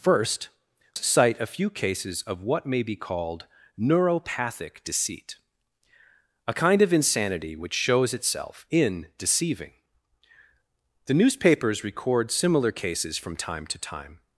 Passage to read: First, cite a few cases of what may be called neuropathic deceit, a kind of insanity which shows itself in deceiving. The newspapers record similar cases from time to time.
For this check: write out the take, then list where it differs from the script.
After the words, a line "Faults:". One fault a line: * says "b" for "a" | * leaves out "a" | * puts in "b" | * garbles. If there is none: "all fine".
First, cite a few cases of what may be called neuropathic deceit, a kind of insanity which shows itself in deceiving. The newspapers record similar cases from time to time.
Faults:
all fine